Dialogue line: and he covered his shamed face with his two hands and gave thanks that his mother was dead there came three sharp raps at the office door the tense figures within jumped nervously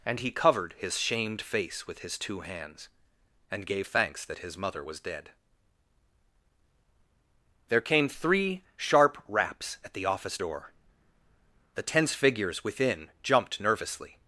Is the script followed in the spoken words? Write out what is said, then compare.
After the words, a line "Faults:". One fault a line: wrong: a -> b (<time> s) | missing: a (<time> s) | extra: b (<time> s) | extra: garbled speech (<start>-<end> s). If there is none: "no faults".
and he covered his shamed face with his two hands and gave thanks that his mother was dead there came three sharp raps at the office door the tense figures within jumped nervously
Faults:
no faults